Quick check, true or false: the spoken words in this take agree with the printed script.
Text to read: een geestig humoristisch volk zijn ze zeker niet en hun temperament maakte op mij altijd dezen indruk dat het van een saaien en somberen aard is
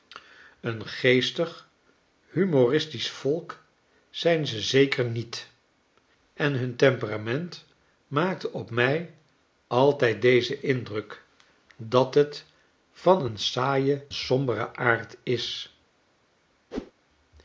false